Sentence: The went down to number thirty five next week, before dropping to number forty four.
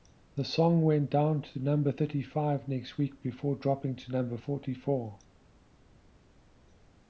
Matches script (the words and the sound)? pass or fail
fail